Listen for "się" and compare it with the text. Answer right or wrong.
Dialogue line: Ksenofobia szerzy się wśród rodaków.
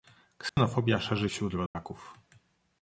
wrong